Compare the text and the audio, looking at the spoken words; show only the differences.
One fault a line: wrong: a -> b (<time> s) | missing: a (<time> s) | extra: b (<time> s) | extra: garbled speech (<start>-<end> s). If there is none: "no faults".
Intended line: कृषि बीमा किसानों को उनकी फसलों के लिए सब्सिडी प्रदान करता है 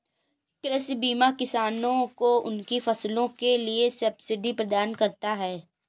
no faults